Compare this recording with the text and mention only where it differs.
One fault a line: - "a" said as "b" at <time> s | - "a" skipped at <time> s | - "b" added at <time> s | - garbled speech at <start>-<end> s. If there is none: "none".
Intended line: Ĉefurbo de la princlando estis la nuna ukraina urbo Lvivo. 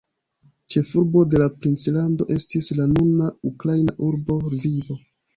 none